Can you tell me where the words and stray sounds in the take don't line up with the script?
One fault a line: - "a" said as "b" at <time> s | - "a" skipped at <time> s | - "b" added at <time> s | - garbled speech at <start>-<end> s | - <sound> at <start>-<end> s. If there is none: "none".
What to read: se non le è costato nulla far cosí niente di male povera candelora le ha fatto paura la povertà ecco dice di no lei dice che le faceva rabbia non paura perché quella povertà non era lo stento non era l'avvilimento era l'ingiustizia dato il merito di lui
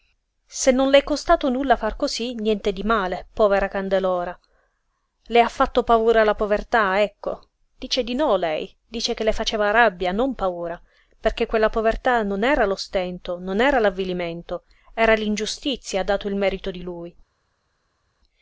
none